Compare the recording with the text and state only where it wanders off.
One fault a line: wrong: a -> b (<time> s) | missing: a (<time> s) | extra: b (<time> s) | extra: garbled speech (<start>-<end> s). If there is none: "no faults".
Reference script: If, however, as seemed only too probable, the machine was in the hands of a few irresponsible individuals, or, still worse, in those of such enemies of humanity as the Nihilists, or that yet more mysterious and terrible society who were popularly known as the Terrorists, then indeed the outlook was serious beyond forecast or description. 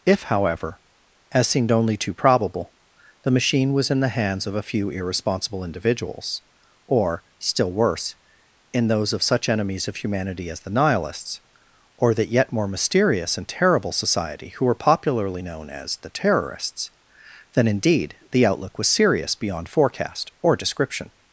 no faults